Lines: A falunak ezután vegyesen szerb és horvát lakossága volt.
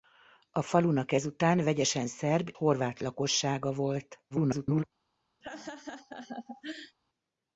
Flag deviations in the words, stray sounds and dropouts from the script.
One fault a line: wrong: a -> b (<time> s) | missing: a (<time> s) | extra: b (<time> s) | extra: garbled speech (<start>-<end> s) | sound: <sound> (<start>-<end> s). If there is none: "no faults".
missing: és (2.5 s)
extra: garbled speech (4.3-4.8 s)
sound: laugh (5.4-7.0 s)